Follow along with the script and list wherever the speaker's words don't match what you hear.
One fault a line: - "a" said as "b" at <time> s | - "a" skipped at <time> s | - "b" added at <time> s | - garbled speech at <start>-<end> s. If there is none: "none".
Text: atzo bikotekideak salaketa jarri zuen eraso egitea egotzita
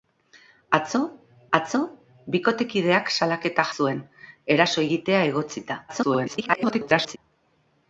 - "atzo" added at 1.6 s
- "jarri" skipped at 3.7 s
- garbled speech at 5.9-7.2 s